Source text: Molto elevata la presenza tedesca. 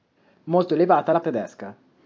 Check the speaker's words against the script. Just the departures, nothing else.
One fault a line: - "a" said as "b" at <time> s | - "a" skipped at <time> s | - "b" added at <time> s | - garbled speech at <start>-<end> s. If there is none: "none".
- "presenza" skipped at 1.2 s